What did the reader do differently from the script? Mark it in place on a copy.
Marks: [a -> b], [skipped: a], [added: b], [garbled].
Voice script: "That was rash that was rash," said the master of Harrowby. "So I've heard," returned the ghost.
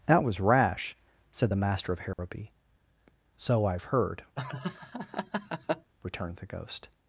"That was rash [skipped: that was rash,"] said the master of Harrowby. "So I've heard," returned the ghost.